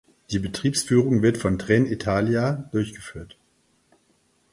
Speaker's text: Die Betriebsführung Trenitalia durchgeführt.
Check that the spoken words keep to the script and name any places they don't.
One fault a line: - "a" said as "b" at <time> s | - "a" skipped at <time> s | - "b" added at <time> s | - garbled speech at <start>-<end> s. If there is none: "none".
- "wird von" added at 1.2 s